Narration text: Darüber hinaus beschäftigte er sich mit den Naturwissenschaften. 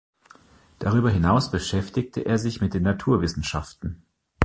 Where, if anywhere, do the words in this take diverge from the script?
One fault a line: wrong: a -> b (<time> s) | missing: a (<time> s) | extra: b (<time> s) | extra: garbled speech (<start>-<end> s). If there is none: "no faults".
no faults